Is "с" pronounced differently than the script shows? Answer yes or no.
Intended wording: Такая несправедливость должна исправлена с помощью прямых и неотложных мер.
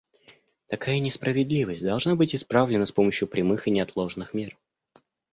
no